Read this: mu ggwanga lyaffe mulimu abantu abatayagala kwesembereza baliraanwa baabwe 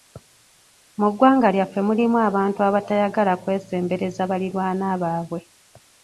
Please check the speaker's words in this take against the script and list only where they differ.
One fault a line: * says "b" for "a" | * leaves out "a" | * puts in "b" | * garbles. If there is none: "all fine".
all fine